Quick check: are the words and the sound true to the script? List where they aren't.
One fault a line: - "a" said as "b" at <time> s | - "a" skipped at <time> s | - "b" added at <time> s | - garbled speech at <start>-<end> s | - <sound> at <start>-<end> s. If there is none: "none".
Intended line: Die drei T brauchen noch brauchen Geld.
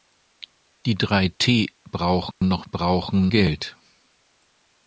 - dropout at 2.3-2.4 s